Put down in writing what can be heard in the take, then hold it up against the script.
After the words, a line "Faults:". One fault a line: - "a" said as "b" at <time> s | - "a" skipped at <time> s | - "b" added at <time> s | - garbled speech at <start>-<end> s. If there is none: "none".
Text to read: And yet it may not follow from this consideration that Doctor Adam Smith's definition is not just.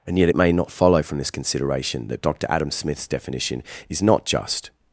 And yet it may not follow from this consideration that Doctor Adam Smith's definition is not just.
Faults:
none